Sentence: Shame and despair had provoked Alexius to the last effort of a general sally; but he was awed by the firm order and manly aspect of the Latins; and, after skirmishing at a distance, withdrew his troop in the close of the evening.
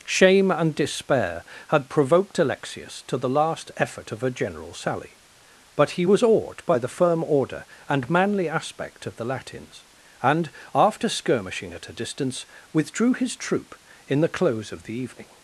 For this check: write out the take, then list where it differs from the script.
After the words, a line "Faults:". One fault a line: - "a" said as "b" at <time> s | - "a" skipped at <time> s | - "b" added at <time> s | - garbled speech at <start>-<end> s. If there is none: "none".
Shame and despair had provoked Alexius to the last effort of a general sally; but he was awed by the firm order and manly aspect of the Latins; and, after skirmishing at a distance, withdrew his troop in the close of the evening.
Faults:
none